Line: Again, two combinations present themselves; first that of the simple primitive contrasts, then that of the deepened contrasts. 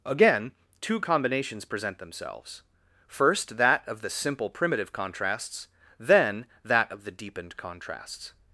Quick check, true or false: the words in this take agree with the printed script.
true